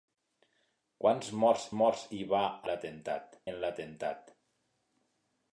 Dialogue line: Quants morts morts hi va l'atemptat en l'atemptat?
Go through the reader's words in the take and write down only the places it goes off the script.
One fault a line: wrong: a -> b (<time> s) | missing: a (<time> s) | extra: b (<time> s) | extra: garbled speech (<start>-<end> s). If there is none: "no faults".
no faults